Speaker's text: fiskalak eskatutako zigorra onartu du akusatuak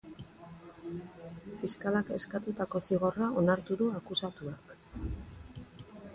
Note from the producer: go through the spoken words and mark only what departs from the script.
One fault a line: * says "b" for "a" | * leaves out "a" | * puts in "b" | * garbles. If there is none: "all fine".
all fine